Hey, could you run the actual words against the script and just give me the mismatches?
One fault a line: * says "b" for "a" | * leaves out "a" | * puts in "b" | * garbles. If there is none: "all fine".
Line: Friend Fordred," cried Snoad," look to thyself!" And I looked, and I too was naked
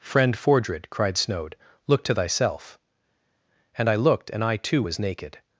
all fine